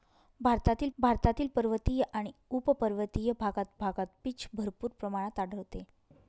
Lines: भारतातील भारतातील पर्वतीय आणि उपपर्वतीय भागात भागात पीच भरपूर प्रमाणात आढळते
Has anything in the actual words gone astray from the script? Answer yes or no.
no